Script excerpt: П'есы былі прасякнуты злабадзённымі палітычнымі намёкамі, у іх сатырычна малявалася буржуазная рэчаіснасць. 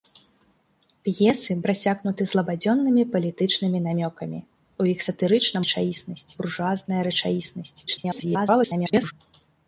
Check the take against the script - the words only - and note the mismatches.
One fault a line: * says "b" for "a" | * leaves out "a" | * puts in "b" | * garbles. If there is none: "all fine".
* leaves out "былі"
* says "рэчаіснасць" for "малявалася"
* garbles